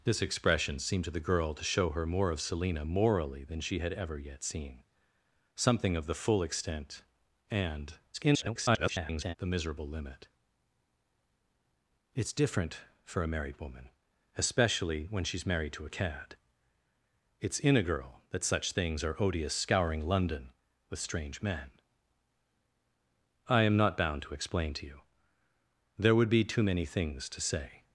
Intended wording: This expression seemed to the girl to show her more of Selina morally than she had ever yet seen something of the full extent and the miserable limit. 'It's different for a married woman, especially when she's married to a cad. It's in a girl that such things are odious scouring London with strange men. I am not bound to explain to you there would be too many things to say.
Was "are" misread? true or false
false